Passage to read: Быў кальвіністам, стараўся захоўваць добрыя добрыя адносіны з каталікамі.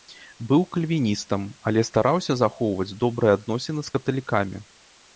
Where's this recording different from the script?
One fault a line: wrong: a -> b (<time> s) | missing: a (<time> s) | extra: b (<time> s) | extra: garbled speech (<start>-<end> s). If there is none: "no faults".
extra: але (1.7 s)
missing: добрыя (3.4 s)